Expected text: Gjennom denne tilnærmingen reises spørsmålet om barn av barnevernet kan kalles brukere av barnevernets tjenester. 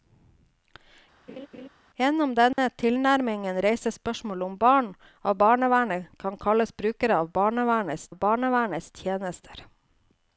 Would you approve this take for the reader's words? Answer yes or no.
no